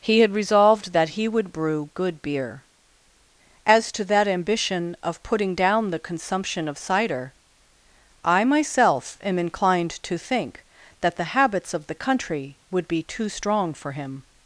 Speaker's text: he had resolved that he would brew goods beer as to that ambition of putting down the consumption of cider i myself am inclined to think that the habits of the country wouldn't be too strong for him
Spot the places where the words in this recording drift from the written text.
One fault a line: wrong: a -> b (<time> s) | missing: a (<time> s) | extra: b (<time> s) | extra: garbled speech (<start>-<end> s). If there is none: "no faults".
wrong: goods -> good (1.9 s)
wrong: wouldn't -> would (12.7 s)